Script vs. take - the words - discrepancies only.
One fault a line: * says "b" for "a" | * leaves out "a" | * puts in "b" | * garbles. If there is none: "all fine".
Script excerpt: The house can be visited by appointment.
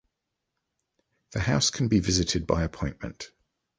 all fine